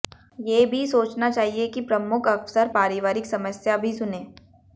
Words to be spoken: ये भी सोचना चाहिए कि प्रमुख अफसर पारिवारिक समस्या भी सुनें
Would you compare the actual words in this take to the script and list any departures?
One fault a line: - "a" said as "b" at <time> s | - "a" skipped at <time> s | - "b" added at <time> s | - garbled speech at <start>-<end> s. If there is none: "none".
none